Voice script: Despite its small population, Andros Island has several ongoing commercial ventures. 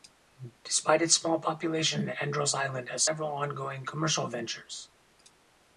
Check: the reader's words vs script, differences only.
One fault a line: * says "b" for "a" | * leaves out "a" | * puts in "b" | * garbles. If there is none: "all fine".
all fine